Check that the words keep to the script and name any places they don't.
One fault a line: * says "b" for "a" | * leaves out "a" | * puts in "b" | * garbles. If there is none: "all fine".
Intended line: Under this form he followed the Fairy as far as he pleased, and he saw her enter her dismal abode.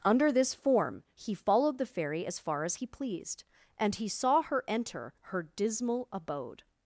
all fine